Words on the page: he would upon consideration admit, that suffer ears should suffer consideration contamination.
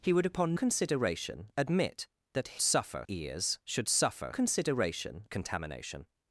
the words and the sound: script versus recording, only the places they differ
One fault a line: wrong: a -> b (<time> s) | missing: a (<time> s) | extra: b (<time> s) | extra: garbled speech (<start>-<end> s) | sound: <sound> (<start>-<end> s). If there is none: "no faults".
no faults